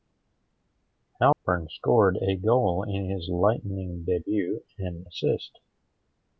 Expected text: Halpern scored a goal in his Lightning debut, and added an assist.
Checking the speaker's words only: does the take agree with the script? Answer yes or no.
no